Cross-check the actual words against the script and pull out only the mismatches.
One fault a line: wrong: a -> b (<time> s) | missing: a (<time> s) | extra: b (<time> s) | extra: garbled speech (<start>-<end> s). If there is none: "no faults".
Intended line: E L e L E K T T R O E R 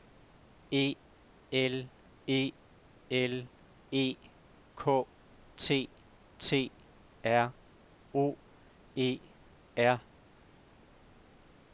no faults